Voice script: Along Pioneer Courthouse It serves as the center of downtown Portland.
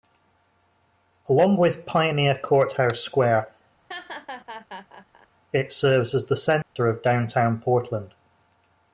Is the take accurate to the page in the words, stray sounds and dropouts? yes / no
no